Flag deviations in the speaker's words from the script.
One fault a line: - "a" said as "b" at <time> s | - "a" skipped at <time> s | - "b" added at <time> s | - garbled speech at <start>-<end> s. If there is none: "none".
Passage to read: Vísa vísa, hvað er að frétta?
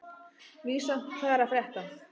- "vísa" skipped at 1.0 s